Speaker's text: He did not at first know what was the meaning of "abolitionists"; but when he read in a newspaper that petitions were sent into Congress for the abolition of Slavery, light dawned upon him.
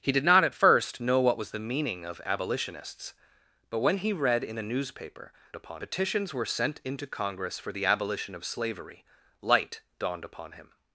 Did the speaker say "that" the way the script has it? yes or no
no